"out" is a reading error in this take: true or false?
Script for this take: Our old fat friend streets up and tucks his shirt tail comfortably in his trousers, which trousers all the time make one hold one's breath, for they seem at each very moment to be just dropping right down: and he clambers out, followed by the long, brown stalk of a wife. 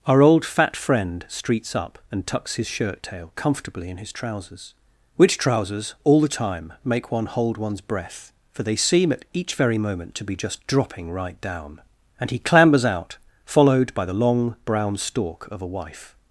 false